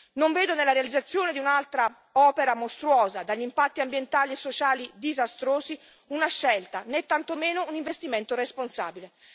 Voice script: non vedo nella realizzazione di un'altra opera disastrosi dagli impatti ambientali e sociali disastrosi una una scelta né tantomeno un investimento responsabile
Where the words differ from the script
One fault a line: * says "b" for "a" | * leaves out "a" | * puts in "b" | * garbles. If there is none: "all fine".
* says "mostruosa" for "disastrosi"
* leaves out "una"